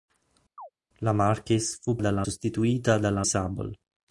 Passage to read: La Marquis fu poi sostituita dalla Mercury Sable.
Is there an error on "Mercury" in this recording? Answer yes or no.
yes